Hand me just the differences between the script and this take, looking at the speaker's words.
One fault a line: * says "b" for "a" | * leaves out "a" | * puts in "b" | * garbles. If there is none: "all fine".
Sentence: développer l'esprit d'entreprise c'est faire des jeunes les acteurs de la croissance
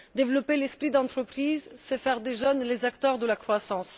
all fine